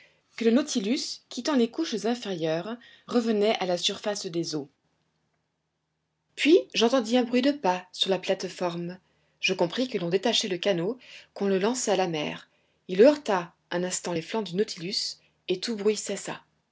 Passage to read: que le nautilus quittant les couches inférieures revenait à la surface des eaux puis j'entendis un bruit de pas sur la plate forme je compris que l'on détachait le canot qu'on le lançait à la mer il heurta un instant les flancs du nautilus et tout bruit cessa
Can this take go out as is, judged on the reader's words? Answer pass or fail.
pass